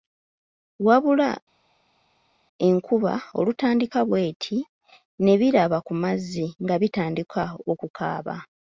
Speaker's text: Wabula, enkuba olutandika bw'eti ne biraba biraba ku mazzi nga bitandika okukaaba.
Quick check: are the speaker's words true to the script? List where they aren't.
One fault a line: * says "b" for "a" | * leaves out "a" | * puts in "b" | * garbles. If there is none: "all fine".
* leaves out "biraba"